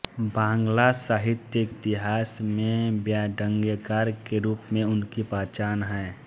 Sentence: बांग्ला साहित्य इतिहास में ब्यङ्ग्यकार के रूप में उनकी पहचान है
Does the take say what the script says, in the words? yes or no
yes